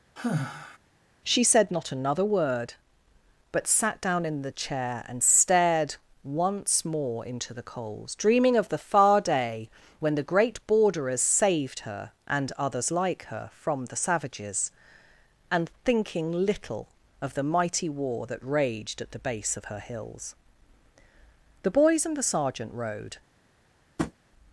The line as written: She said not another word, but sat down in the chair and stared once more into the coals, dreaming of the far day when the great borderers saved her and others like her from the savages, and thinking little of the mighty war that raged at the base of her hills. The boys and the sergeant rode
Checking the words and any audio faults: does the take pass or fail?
fail